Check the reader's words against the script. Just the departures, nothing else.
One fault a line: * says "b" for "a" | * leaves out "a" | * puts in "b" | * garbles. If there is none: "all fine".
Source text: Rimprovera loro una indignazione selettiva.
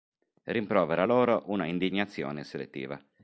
all fine